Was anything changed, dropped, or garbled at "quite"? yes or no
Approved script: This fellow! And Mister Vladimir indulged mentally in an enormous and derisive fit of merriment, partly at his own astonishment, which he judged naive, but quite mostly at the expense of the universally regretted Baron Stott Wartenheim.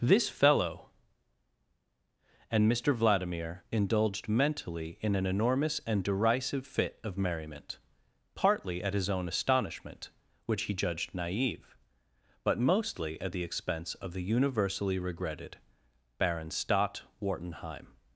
yes